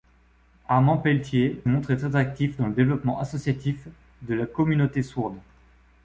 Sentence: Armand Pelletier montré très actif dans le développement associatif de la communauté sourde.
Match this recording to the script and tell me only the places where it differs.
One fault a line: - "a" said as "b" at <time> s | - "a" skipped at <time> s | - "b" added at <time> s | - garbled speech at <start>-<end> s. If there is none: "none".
none